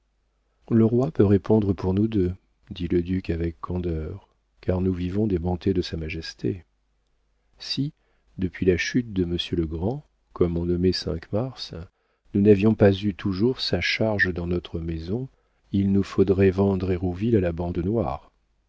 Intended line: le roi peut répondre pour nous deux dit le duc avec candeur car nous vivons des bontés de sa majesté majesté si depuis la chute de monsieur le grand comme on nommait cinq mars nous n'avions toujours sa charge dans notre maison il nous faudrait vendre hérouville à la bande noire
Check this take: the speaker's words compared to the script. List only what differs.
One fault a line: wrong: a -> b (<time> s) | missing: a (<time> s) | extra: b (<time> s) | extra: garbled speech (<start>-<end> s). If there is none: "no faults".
missing: majesté (6.7 s)
extra: pas eu (12.7 s)